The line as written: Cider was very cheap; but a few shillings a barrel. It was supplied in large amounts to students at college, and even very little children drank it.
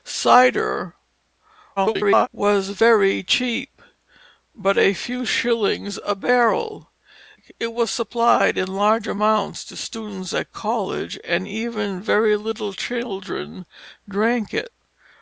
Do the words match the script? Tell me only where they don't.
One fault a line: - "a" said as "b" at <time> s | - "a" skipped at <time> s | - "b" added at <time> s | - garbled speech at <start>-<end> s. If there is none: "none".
- garbled speech at 1.8-2.3 s